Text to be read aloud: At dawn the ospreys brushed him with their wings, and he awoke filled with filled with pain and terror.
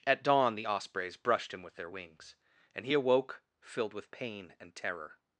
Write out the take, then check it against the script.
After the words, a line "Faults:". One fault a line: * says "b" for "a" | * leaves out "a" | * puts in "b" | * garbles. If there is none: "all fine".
At dawn the ospreys brushed him with their wings, and he awoke filled with pain and terror.
Faults:
* leaves out "filled with"